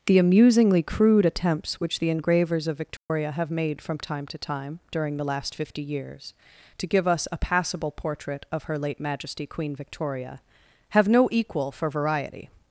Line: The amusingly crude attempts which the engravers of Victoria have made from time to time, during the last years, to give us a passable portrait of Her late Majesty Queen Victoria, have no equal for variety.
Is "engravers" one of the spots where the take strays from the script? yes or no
no